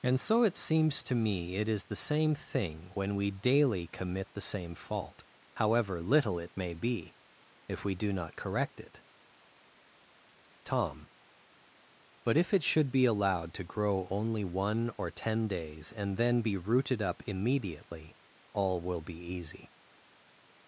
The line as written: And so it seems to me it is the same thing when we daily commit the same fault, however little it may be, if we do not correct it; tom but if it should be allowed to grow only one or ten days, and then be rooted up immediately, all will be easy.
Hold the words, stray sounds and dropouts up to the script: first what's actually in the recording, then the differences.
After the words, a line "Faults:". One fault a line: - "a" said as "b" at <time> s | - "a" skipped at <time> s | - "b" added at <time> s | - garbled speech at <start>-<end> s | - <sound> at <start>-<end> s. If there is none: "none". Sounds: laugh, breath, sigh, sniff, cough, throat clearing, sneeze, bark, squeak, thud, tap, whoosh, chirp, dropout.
And so it seems to me it is the same thing when we daily commit the same fault, however little it may be, if we do not correct it; tom but if it should be allowed to grow only one or ten days, and then be rooted up immediately, all will be easy.
Faults:
none